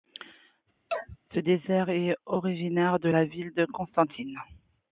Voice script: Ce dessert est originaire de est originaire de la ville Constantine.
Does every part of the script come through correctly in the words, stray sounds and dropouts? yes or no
no